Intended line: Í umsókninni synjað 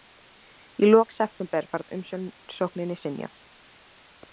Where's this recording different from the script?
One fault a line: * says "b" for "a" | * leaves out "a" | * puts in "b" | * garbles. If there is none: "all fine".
* puts in "lok september var"